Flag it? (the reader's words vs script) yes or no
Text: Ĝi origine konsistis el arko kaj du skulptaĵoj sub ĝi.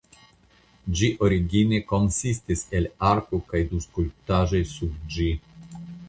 no